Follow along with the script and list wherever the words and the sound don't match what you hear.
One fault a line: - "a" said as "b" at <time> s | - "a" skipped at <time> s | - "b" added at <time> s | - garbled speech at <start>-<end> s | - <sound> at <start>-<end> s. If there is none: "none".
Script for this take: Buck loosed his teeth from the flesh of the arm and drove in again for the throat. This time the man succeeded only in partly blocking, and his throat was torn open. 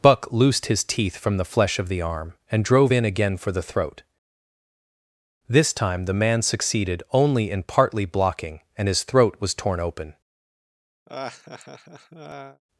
- laugh at 11.1-12.6 s